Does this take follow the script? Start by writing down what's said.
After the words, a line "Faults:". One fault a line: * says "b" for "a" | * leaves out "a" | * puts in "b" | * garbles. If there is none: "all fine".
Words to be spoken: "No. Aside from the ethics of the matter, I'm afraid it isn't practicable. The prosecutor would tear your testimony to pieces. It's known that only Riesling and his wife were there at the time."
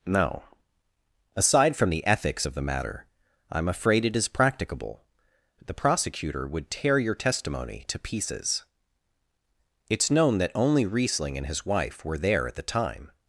"No. Aside from the ethics of the matter, I'm afraid it is practicable. The prosecutor would tear your testimony to pieces. It's known that only Riesling and his wife were there at the time."
Faults:
* says "is" for "isn't"